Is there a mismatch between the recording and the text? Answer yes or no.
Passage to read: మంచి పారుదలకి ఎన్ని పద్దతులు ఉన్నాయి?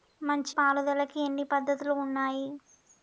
no